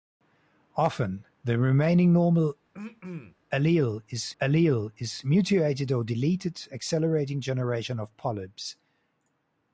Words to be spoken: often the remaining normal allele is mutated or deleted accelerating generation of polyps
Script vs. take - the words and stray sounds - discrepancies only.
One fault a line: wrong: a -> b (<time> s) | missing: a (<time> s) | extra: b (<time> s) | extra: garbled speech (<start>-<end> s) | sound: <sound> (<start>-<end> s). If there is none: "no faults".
sound: throat clearing (2.7-3.4 s)
extra: allele is (4.4 s)